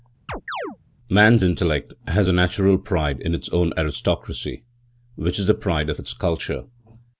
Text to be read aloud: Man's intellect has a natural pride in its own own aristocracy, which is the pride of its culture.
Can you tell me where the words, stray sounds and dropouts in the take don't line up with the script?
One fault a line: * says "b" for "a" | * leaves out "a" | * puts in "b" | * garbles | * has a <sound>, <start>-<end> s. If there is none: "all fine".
* has a chirp, 0.3-0.8 s
* leaves out "own"